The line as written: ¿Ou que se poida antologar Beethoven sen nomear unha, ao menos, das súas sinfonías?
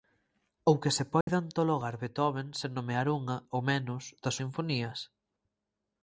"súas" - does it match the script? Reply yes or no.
no